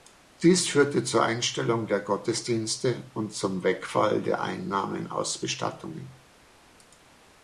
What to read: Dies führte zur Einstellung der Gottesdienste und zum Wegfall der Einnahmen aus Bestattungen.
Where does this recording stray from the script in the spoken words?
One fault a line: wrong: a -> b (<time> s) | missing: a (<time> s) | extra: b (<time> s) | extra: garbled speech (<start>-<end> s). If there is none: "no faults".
no faults